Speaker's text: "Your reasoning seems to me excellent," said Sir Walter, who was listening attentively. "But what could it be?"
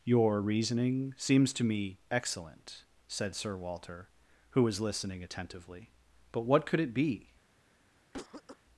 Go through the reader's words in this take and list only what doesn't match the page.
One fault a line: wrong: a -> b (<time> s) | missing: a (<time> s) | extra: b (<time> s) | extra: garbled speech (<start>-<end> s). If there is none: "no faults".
no faults